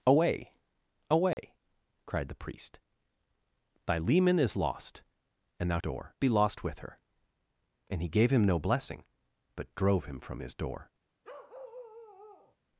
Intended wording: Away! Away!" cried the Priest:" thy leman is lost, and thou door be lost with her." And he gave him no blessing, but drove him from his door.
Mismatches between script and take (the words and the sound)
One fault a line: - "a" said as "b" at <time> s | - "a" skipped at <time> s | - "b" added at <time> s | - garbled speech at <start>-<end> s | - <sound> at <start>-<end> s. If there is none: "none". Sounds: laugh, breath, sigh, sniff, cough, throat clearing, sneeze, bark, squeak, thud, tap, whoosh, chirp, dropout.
- dropout at 1.3-1.4 s
- bark at 11.2-12.6 s